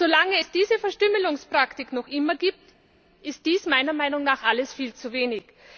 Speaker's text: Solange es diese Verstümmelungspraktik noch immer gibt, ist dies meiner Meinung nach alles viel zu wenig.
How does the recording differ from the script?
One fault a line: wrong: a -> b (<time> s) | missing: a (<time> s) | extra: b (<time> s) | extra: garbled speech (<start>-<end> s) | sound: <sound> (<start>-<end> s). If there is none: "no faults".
no faults